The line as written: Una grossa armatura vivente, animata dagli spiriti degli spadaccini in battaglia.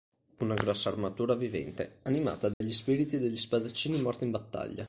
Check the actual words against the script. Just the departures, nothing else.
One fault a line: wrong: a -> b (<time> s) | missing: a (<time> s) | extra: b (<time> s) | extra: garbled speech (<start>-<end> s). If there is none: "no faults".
extra: morti (4.0 s)